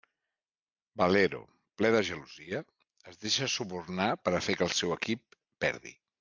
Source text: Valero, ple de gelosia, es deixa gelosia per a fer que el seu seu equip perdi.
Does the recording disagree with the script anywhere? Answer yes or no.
yes